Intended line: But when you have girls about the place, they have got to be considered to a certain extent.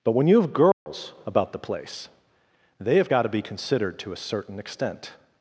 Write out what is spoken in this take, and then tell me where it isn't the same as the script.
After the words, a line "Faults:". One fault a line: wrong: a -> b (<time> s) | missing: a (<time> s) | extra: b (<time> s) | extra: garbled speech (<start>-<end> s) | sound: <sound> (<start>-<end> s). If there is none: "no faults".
But when you have girls about the place, they have got to be considered to a certain extent.
Faults:
sound: dropout (0.7-0.9 s)